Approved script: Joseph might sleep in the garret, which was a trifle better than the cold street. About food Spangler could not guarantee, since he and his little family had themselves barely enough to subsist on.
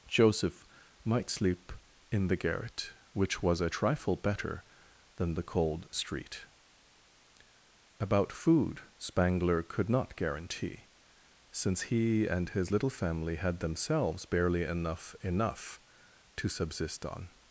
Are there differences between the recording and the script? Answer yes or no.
yes